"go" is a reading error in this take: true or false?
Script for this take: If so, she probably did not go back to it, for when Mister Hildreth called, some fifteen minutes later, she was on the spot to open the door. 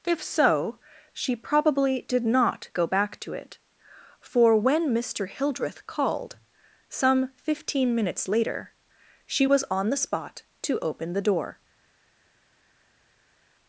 false